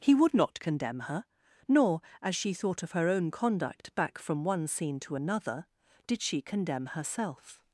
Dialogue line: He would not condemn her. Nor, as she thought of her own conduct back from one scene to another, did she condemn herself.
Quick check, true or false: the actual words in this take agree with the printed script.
true